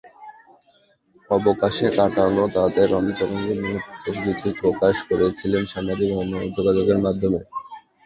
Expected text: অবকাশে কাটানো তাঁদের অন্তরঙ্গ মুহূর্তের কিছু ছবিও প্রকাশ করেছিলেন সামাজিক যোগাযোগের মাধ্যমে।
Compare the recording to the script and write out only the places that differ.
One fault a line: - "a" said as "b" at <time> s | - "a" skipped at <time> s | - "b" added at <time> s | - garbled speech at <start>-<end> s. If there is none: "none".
- "ছবিও" skipped at 4.5 s